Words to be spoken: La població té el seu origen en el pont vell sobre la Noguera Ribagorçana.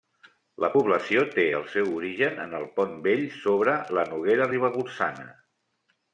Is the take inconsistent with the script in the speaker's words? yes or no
no